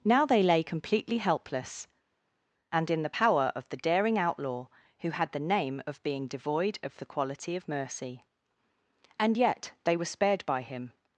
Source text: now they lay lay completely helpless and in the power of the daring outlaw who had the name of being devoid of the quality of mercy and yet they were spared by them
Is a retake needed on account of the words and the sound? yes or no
yes